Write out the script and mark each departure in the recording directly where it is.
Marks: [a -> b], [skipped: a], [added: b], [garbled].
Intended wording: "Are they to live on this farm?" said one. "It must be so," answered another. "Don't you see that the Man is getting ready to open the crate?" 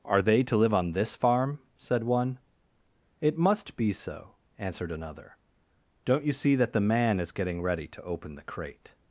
"Are they to live on this farm?" said one. "It must be so," answered another. "Don't you see that the Man is getting ready to open the crate?"